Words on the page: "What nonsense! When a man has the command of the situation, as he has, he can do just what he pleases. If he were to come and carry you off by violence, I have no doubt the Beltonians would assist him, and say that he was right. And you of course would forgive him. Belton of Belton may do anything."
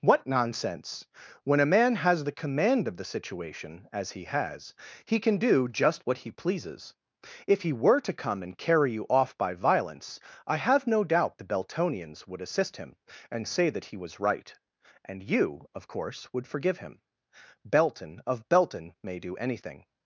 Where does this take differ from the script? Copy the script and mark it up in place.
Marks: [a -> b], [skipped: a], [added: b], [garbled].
"What nonsense! When a man has the command of the situation, as he has, he can do just what he pleases. If he were to come and carry you off by violence, I have no doubt the Beltonians would assist him, and say that he was right. And you of course would forgive him. Belton of Belton may do anything."